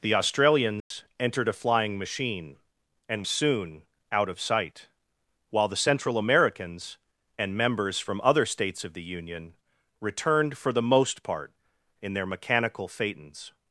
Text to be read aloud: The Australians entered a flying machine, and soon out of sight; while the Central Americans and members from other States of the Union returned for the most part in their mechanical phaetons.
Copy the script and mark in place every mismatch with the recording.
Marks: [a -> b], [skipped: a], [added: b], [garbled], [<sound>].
The Australians [dropout] entered a flying machine, and soon out of sight; while the Central Americans and members from other States of the Union returned for the most part in their mechanical phaetons.